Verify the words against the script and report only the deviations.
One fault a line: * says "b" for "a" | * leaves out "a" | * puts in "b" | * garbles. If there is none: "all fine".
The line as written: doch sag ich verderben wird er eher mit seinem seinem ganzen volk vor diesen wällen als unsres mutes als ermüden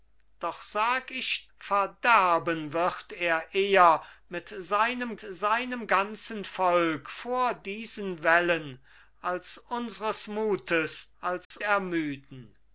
all fine